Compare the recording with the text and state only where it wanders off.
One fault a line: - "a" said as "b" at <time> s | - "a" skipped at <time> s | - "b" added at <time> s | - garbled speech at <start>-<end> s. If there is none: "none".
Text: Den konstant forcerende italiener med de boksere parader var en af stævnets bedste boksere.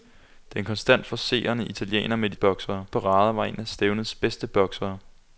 none